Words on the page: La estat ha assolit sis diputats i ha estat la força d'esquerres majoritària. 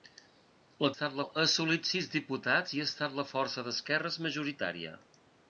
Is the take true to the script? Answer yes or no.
yes